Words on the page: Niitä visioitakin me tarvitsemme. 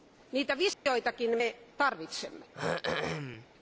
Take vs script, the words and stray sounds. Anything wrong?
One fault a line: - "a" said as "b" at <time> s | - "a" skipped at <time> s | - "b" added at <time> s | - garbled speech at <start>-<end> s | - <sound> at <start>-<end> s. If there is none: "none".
- dropout at 0.7-0.9 s
- throat clearing at 2.5-3.5 s